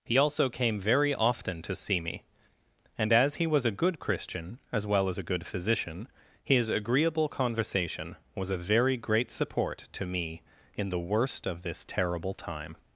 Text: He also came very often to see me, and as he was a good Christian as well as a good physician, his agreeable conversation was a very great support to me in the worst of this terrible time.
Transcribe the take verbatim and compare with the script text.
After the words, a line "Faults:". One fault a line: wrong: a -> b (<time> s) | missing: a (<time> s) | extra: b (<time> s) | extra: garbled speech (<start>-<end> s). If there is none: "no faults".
He also came very often to see me, and as he was a good Christian as well as a good physician, his agreeable conversation was a very great support to me in the worst of this terrible time.
Faults:
no faults